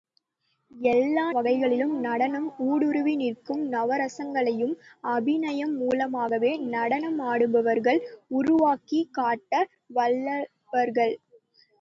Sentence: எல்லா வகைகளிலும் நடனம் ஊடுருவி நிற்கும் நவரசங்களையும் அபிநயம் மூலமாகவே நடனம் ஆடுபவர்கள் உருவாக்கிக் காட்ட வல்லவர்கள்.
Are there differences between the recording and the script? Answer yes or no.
no